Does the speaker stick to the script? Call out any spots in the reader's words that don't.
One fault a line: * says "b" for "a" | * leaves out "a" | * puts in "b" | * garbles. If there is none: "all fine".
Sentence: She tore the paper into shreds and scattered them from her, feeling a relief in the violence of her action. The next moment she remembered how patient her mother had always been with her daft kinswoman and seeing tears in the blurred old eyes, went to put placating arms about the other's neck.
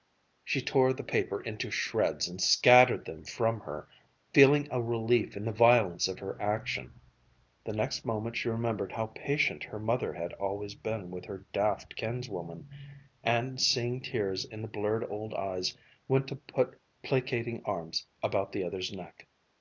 all fine